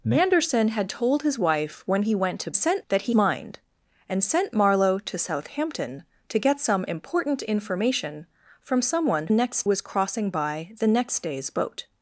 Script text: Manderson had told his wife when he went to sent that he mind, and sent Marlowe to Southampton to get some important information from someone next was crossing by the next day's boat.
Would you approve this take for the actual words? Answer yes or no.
yes